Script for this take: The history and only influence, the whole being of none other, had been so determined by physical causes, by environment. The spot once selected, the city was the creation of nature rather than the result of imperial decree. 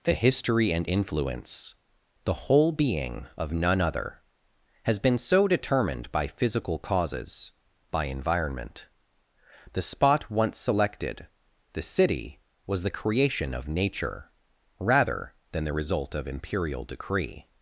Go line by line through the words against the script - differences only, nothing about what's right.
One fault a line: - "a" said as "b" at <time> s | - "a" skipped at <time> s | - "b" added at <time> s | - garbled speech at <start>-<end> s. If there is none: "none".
- "only" skipped at 0.9 s
- "had" said as "has" at 4.8 s